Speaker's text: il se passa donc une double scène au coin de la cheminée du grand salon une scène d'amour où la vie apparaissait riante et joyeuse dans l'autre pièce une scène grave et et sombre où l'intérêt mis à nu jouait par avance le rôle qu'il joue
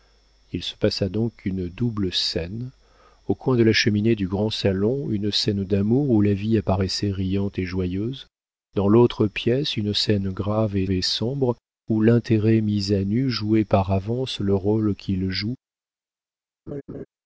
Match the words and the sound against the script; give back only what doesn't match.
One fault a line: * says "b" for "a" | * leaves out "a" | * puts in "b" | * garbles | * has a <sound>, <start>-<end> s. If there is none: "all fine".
* has a laugh, 16.7-17.1 s